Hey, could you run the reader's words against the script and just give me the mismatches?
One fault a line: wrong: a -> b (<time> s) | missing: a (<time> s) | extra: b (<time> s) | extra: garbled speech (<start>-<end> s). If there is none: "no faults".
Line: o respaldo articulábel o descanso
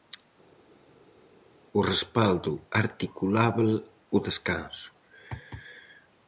no faults